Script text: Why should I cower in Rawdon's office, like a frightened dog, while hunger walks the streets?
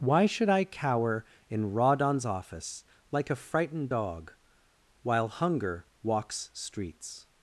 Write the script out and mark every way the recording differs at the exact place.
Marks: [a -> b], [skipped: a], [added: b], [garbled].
Why should I cower in Rawdon's office, like a frightened dog, while hunger walks [skipped: the] streets?